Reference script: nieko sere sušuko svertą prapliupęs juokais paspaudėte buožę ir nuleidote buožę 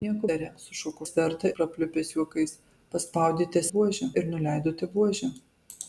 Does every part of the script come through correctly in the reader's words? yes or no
yes